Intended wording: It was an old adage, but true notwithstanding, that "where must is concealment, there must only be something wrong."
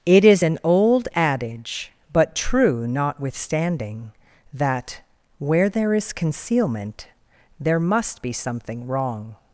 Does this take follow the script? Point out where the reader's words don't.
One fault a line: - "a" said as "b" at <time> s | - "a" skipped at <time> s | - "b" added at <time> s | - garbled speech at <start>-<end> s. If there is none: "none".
- "was" said as "is" at 0.2 s
- "must" said as "there" at 5.7 s
- "only" skipped at 8.2 s